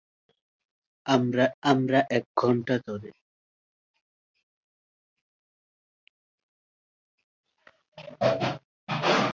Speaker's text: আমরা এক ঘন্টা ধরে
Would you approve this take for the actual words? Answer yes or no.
no